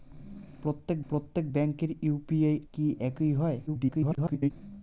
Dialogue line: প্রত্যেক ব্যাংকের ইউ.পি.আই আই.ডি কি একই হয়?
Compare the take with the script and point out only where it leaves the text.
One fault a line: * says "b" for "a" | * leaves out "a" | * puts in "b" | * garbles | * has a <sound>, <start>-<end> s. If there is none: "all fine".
* puts in "প্রত্যেক"
* leaves out "আই.ডি"
* garbles